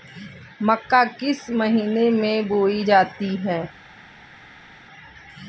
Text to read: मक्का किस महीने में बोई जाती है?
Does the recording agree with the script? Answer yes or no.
yes